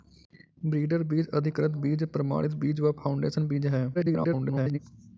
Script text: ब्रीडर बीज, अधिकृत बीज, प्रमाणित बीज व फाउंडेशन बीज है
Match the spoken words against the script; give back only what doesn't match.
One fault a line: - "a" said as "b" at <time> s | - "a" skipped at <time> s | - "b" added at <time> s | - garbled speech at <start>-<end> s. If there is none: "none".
- garbled speech at 3.9-4.8 s